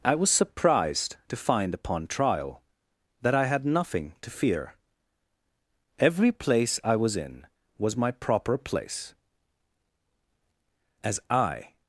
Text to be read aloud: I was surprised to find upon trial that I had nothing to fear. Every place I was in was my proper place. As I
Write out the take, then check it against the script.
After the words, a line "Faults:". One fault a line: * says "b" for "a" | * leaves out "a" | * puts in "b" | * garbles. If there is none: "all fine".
I was surprised to find upon trial that I had nothing to fear. Every place I was in was my proper place. As I
Faults:
all fine